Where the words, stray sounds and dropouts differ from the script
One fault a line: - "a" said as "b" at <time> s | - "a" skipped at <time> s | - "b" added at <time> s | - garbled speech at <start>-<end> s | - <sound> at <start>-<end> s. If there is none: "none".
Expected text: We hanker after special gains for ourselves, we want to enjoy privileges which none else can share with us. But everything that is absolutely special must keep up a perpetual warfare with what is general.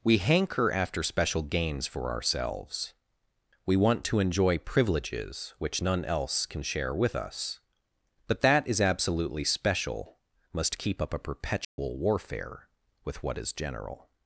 - "everything" skipped at 8.4 s
- dropout at 11.6-11.8 s